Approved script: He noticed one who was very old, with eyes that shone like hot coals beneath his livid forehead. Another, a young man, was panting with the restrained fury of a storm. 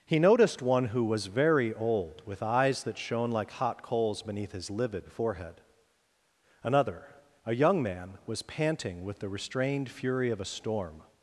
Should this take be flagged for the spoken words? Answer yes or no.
no